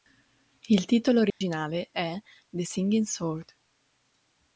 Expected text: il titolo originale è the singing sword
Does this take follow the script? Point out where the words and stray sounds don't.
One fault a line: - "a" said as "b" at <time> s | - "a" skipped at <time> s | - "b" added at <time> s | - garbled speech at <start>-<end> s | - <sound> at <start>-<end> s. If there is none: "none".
- dropout at 1.3-1.4 s